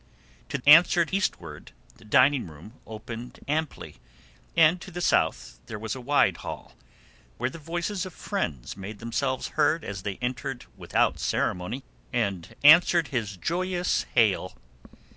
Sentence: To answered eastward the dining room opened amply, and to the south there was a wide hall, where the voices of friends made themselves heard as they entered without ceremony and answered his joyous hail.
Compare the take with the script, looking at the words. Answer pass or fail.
pass